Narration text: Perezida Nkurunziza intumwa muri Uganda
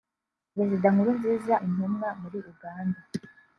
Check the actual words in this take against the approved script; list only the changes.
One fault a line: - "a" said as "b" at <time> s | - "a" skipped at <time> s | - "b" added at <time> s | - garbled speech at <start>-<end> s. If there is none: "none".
none